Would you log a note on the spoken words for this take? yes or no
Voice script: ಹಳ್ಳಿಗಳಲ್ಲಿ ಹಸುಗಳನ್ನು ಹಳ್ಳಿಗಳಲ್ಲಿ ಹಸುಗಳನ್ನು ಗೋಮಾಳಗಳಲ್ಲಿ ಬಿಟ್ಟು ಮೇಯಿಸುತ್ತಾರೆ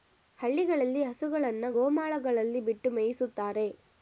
yes